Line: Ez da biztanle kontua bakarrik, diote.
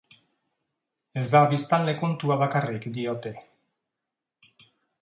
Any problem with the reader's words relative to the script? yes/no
no